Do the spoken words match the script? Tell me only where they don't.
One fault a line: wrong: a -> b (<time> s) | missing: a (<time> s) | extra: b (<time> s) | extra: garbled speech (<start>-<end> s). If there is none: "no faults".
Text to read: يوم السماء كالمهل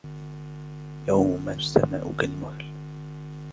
no faults